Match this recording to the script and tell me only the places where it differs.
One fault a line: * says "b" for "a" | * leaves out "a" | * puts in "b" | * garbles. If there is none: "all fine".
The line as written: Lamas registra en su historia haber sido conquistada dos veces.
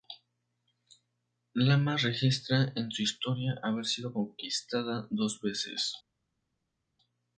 all fine